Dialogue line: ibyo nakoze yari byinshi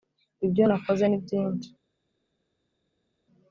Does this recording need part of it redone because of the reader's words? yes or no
yes